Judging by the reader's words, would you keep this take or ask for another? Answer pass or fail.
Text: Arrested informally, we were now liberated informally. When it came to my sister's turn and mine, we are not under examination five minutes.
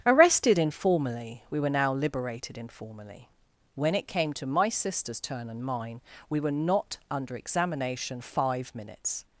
fail